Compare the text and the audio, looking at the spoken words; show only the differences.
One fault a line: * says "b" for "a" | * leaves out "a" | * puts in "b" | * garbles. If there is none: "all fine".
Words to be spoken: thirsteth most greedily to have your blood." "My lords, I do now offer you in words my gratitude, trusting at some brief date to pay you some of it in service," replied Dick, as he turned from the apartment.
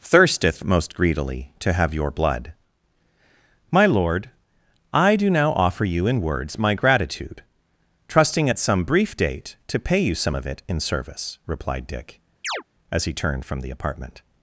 * says "lord" for "lords"